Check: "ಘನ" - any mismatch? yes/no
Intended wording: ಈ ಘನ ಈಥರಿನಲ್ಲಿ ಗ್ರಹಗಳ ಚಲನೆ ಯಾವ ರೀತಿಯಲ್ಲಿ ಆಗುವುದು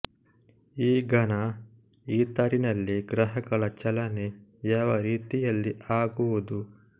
no